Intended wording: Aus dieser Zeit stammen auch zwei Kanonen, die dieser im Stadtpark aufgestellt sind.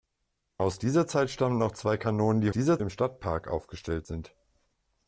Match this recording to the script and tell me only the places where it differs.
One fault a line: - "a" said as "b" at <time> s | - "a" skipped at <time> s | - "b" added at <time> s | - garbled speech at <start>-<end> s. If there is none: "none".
none